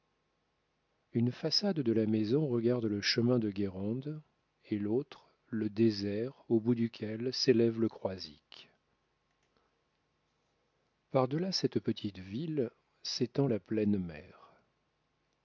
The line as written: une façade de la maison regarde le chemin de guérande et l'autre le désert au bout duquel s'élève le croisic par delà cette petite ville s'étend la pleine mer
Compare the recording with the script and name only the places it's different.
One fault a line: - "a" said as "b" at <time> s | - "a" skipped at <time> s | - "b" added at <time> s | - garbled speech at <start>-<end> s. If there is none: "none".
none